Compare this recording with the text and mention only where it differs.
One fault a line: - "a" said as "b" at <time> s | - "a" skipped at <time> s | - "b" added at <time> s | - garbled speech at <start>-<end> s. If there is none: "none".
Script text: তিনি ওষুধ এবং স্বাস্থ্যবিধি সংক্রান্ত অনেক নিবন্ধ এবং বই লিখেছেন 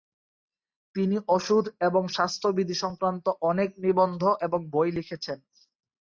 none